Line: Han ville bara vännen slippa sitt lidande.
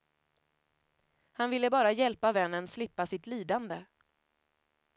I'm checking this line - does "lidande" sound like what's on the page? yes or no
yes